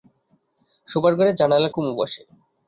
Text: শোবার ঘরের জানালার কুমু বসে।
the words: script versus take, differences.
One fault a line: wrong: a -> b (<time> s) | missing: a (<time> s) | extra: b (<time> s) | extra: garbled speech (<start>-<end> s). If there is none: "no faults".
no faults